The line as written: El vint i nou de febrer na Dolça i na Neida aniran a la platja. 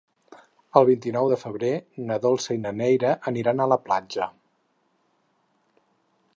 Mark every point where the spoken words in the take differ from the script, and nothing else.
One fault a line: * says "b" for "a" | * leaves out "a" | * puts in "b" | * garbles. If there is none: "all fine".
all fine